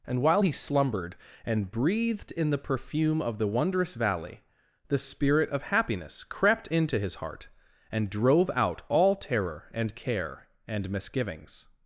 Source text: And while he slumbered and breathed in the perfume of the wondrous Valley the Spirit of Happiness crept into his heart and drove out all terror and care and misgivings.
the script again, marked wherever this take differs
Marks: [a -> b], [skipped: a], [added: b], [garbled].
And while he slumbered and breathed in the perfume of the wondrous Valley the Spirit of Happiness crept into his heart and drove out all terror and care and misgivings.